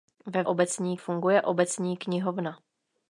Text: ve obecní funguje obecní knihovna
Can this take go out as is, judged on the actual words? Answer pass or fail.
pass